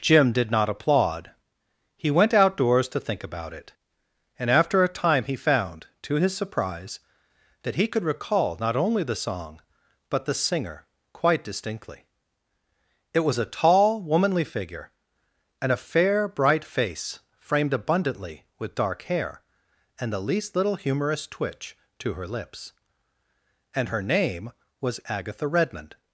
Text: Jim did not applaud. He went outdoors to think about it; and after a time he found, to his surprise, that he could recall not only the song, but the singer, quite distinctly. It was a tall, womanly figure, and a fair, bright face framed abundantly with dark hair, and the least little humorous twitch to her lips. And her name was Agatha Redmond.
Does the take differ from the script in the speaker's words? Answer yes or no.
no